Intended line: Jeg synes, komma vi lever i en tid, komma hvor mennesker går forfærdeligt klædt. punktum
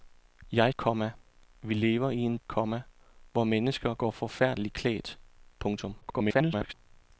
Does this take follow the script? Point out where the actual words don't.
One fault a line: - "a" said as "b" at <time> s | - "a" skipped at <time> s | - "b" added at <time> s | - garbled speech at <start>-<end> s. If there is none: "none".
- "synes" skipped at 0.7 s
- "tid" skipped at 2.4 s
- garbled speech at 6.0-6.7 s